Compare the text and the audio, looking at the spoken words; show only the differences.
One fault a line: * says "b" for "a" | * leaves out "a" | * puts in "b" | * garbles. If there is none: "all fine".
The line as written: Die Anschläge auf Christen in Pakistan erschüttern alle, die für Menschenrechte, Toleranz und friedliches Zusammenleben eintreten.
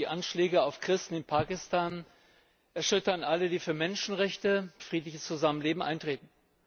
* leaves out "Toleranz und"